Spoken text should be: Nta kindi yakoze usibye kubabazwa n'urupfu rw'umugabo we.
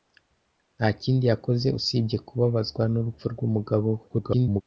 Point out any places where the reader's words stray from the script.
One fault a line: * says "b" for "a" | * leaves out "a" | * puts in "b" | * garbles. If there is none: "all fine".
* garbles